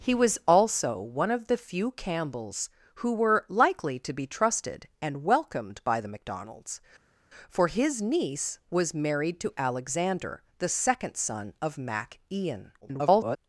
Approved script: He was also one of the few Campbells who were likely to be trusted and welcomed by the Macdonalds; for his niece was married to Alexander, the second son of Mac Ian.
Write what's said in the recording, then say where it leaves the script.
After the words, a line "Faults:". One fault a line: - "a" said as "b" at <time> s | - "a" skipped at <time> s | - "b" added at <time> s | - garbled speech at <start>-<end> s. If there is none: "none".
He was also one of the few Campbells who were likely to be trusted and welcomed by the Macdonalds; for his niece was married to Alexander, the second son of Mac Ian. [garbled]
Faults:
- garbled speech at 12.8-13.4 s